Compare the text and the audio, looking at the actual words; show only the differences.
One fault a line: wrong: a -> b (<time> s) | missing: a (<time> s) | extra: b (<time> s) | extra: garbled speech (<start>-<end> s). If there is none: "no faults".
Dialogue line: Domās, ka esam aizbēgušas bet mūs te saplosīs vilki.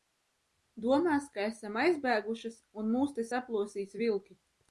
wrong: bet -> un (2.8 s)